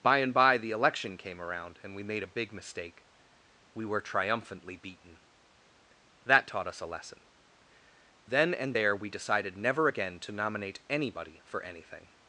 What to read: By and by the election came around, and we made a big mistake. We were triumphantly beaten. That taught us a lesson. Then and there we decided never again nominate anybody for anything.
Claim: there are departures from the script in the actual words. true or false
true